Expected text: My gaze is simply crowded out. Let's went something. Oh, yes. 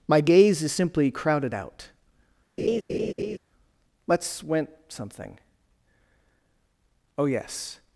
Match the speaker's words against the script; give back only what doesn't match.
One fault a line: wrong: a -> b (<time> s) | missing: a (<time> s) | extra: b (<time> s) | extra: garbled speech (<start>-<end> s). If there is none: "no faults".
no faults